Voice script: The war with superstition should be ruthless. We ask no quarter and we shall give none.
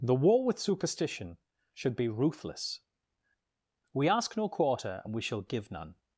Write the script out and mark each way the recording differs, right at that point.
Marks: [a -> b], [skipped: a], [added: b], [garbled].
The war with superstition should be ruthless. We ask no quarter and we shall give none.